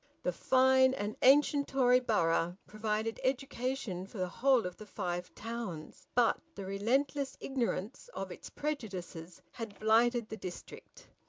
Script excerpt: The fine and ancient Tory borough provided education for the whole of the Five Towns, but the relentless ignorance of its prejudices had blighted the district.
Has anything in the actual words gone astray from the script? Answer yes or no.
no